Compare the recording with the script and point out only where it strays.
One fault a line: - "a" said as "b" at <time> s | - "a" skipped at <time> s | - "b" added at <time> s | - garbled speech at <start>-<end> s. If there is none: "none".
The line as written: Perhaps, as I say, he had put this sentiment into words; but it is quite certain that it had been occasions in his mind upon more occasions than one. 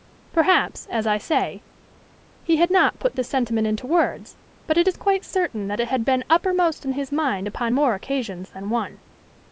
- "not" added at 2.7 s
- "occasions" said as "uppermost" at 6.3 s